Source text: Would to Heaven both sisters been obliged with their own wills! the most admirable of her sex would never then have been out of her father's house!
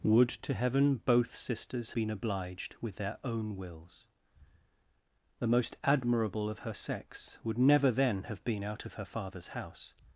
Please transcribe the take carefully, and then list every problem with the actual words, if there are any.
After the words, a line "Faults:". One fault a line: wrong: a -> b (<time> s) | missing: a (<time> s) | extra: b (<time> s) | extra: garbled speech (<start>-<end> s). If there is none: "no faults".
Would to Heaven both sisters been obliged with their own wills! the most admirable of her sex would never then have been out of her father's house!
Faults:
no faults